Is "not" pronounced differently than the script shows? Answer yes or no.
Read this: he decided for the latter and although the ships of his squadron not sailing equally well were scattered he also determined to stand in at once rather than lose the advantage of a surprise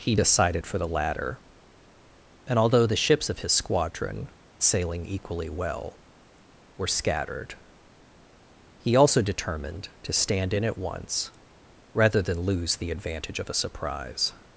yes